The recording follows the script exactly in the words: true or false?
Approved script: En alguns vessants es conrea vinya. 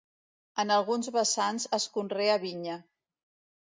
true